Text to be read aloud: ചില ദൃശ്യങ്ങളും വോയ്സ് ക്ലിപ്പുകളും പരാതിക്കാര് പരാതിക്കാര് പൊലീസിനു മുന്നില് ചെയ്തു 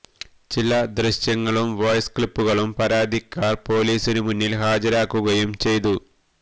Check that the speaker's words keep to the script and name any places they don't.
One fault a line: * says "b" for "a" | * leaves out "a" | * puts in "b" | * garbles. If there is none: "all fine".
* leaves out "പരാതിക്കാര്"
* puts in "ഹാജരാക്കുകയും"